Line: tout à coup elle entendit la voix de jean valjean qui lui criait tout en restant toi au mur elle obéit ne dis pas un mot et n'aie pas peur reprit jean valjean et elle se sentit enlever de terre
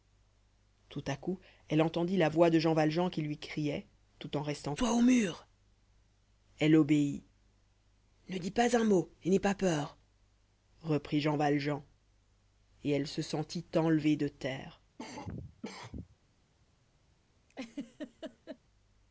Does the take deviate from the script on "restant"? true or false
false